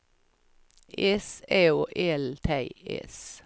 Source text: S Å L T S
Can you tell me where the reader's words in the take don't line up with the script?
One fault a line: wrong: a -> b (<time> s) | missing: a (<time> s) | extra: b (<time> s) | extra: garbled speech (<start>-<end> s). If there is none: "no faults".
no faults